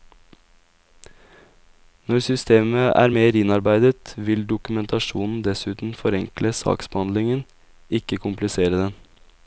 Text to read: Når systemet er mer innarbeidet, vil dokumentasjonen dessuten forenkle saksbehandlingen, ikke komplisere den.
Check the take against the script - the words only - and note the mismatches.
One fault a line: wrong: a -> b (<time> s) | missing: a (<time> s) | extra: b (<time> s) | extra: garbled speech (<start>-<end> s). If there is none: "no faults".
no faults